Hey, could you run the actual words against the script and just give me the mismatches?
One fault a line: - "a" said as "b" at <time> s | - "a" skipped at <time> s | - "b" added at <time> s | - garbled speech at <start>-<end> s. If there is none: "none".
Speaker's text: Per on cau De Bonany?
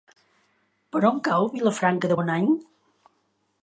- "Vilafranca" added at 1.5 s